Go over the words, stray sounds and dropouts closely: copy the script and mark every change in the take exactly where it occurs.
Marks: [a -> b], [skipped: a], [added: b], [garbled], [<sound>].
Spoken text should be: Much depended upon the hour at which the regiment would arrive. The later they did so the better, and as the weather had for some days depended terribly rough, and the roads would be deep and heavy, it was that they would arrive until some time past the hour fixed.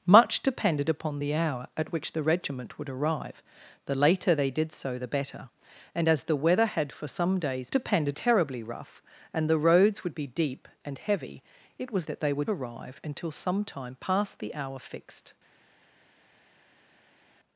Much depended upon the hour at which the regiment would arrive. The later they did so the better, and as the weather had for some days depended terribly rough, and the roads would be deep and heavy, it was that they would arrive until some time past the hour fixed.